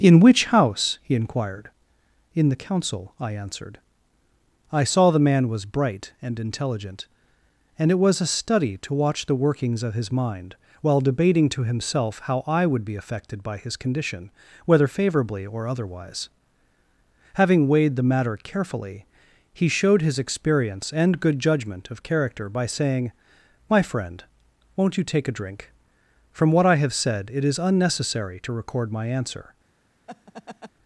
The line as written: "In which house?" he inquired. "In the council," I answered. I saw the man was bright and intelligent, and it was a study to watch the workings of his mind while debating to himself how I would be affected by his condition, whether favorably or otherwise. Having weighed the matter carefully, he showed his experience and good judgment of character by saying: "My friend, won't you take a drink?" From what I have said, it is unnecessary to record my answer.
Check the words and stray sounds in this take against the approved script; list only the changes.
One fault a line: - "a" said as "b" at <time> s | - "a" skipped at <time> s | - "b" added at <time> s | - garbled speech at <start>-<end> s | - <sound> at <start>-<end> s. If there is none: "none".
- laugh at 30.1-30.7 s